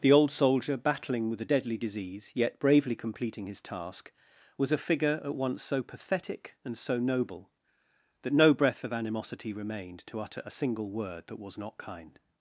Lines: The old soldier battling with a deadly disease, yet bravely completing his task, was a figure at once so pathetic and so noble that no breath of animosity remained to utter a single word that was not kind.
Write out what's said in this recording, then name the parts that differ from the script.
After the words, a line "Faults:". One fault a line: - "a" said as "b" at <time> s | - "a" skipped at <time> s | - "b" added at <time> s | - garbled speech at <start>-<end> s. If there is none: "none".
The old soldier battling with a deadly disease, yet bravely completing his task, was a figure at once so pathetic and so noble that no breath of animosity remained to utter a single word that was not kind.
Faults:
none